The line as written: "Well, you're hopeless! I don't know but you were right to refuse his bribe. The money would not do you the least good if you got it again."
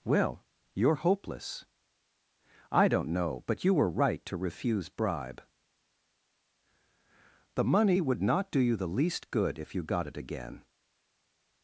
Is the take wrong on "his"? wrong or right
wrong